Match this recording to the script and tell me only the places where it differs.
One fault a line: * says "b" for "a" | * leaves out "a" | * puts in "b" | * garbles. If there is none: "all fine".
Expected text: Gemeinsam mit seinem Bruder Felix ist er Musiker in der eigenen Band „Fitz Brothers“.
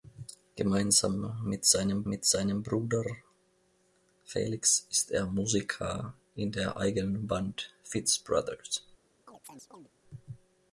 * puts in "mit seinem"